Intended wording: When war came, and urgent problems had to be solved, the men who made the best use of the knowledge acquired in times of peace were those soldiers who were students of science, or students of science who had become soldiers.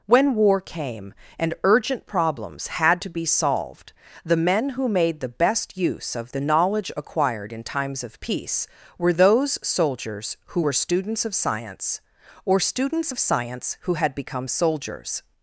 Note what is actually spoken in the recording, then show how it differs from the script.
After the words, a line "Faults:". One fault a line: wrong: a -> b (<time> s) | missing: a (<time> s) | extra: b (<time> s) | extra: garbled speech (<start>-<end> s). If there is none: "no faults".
When war came, and urgent problems had to be solved, the men who made the best use of the knowledge acquired in times of peace were those soldiers who were students of science, or students of science who had become soldiers.
Faults:
no faults